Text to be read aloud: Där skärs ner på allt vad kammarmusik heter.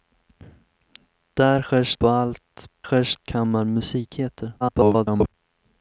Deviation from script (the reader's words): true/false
true